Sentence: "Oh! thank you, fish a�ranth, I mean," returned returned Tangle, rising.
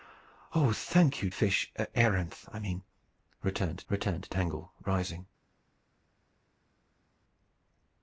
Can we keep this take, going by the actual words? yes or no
yes